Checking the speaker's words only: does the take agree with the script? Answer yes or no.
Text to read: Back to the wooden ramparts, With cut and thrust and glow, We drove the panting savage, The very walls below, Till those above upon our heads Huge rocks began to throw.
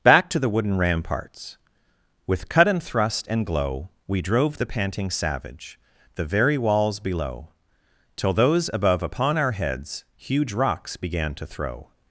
yes